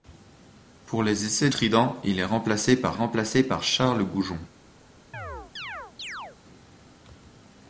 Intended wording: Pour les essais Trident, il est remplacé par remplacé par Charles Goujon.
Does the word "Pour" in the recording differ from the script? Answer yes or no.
no